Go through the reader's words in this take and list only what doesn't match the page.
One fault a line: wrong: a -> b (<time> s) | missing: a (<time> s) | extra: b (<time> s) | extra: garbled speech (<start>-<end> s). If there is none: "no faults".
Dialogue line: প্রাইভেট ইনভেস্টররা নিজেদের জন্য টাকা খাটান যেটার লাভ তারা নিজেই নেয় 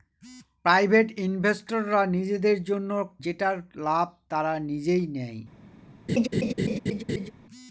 missing: টাকা খাটান (2.9 s)